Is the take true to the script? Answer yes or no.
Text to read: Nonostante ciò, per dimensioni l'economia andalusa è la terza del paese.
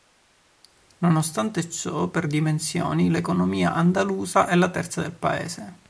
yes